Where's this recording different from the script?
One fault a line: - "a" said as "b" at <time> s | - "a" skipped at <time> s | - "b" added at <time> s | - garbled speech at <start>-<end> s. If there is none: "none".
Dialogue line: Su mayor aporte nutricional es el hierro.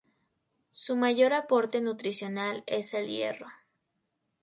none